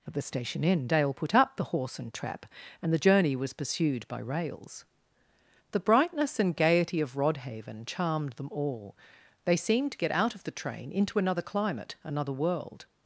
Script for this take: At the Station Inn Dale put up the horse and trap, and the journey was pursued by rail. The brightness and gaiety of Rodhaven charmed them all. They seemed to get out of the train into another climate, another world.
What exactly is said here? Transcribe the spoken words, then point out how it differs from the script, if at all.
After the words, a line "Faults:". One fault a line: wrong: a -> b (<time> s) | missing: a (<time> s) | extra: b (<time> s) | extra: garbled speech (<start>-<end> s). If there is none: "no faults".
At the Station Inn Dale put up the horse and trap, and the journey was pursued by rails. The brightness and gaiety of Rodhaven charmed them all. They seemed to get out of the train into another climate, another world.
Faults:
wrong: rail -> rails (4.2 s)